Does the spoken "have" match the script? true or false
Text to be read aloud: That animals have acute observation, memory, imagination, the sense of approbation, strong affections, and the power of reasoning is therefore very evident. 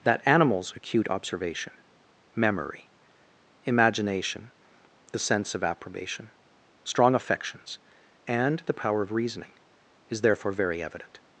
false